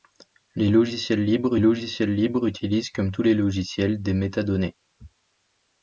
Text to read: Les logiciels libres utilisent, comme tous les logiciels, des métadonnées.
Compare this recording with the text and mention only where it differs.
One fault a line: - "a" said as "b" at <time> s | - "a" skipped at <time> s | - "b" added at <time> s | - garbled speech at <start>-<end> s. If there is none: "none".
- "logiciels libres" added at 1.6 s